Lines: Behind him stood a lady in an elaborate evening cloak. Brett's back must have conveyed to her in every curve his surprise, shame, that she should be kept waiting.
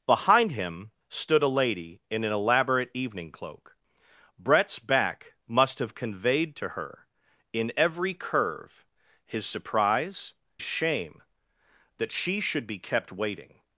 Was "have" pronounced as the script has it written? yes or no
yes